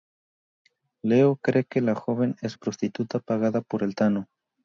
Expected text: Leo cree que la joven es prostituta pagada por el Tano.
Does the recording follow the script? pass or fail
pass